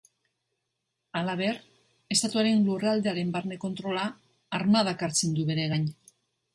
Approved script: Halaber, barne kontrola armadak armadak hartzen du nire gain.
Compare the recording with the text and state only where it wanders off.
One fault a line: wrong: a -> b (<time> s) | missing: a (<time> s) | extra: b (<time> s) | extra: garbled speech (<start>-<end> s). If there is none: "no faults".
extra: estatuaren lurraldearen (2.2 s)
missing: armadak (5.1 s)
wrong: nire -> bere (5.5 s)